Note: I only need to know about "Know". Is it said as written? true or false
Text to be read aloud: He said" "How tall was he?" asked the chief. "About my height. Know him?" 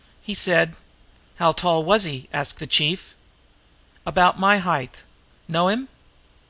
true